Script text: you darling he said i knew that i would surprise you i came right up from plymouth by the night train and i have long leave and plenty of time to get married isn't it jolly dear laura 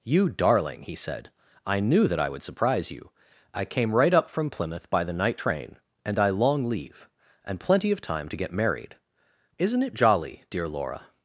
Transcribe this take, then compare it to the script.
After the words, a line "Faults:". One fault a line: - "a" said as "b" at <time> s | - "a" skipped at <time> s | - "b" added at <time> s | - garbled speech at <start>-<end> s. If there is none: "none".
you darling he said i knew that i would surprise you i came right up from plymouth by the night train and i long leave and plenty of time to get married isn't it jolly dear laura
Faults:
- "have" skipped at 6.3 s